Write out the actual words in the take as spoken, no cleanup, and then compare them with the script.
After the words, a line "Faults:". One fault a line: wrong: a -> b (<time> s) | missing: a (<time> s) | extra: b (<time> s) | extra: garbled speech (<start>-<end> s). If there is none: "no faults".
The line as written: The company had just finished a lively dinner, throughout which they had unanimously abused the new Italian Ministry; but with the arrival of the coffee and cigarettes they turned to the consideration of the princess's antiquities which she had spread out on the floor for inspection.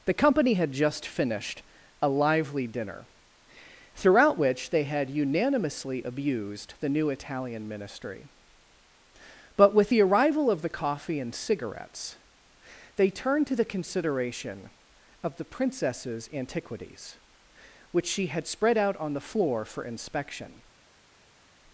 The company had just finished a lively dinner, throughout which they had unanimously abused the new Italian Ministry; but with the arrival of the coffee and cigarettes they turned to the consideration of the princess's antiquities which she had spread out on the floor for inspection.
Faults:
no faults